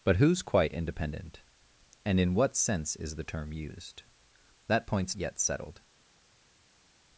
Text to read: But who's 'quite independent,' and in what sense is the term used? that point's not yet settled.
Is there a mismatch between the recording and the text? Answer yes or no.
yes